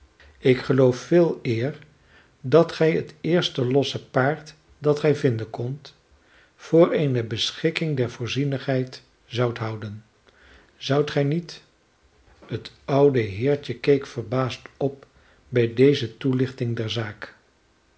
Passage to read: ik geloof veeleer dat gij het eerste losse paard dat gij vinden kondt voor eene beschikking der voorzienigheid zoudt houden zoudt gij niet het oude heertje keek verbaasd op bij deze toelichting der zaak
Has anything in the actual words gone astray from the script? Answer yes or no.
no